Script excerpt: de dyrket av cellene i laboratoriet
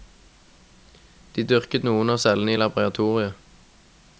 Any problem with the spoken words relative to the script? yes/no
yes